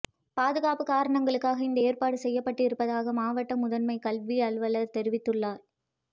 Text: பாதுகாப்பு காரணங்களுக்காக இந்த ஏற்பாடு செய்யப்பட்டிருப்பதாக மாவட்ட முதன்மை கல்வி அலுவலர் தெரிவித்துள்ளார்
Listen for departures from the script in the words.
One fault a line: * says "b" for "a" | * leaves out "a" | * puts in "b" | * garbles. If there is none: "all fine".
all fine